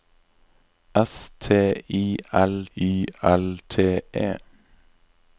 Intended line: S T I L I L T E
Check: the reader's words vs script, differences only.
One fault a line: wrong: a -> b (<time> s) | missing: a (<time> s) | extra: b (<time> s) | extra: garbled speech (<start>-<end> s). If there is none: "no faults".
no faults